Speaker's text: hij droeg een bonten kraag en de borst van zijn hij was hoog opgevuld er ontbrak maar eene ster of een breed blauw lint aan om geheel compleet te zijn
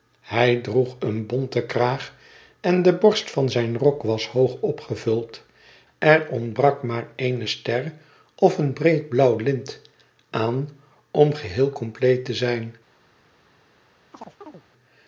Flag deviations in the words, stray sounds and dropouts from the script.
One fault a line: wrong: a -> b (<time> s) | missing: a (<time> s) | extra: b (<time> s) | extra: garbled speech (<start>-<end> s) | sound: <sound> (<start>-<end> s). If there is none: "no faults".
wrong: hij -> rok (3.8 s)
sound: chirp (14.1-14.6 s)